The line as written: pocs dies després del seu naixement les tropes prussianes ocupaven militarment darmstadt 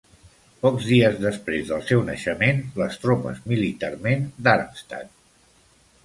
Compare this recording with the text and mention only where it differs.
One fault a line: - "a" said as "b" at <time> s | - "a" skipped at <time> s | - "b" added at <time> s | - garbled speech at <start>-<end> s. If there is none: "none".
- "prussianes ocupaven" skipped at 3.4 s